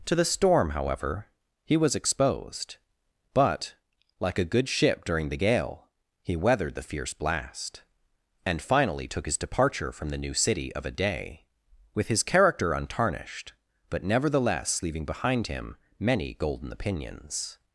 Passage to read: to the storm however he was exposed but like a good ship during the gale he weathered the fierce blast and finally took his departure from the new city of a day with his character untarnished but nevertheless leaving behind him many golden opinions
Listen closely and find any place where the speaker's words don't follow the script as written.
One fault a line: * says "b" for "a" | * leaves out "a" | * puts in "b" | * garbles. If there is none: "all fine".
all fine